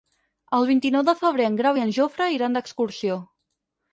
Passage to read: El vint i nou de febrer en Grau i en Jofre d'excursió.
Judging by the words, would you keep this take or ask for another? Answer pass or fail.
fail